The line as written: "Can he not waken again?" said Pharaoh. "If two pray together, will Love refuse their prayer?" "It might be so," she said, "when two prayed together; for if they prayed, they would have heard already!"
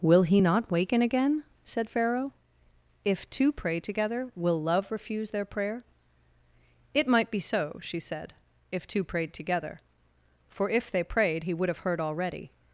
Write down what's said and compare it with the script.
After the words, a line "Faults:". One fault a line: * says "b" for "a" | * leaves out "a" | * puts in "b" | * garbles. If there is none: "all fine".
"Will he not waken again?" said Pharaoh. "If two pray together, will Love refuse their prayer?" "It might be so," she said, "if two prayed together; for if they prayed, he would have heard already!"
Faults:
* says "Will" for "Can"
* says "if" for "when"
* says "he" for "they"